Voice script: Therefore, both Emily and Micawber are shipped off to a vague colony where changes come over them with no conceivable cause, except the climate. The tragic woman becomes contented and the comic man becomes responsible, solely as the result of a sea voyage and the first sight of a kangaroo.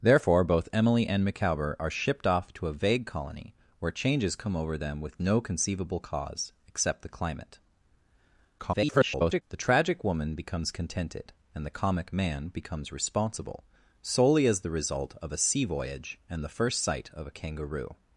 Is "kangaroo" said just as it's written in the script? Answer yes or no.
yes